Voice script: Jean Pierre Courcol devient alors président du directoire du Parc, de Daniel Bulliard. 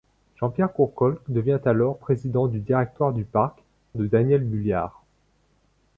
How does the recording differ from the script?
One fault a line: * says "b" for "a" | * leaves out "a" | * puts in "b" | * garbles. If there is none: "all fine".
all fine